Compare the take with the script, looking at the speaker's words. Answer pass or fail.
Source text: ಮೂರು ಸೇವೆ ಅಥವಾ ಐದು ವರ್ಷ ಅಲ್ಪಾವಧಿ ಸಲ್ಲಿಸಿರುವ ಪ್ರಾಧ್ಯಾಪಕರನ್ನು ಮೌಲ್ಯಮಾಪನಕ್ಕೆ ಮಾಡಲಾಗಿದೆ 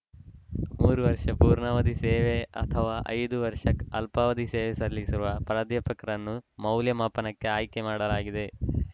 fail